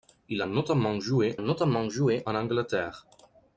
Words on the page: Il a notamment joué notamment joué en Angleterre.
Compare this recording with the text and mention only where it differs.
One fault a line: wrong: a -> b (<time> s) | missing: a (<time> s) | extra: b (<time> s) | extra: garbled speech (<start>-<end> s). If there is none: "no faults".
no faults